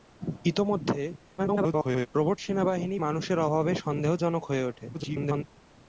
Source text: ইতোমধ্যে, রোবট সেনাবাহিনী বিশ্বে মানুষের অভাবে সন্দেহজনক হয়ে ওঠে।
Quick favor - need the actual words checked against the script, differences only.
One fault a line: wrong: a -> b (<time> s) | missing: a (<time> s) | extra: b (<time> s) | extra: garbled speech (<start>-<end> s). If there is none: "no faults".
extra: garbled speech (1.4-2.1 s)
missing: বিশ্বে (3.0 s)
extra: garbled speech (4.9-5.4 s)